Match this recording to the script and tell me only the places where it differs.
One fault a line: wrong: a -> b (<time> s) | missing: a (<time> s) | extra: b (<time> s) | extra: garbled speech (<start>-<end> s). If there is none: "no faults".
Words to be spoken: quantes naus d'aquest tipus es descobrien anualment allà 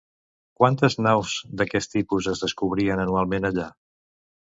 no faults